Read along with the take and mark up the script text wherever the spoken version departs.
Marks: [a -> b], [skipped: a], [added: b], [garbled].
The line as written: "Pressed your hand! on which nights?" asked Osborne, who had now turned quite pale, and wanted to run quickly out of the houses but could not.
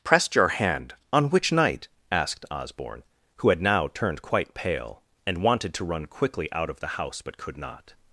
"Pressed your hand! on which [nights?" -> night] asked Osborne, who had now turned quite pale, and wanted to run quickly out of the [houses -> house] but could not.